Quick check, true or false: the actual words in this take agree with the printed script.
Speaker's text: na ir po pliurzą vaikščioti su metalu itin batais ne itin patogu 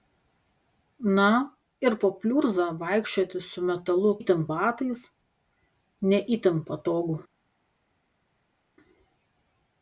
true